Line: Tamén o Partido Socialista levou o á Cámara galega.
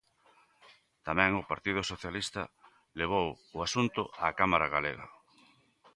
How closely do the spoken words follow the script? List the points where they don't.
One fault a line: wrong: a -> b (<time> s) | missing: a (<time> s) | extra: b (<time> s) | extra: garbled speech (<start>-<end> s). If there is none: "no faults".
extra: asunto (3.7 s)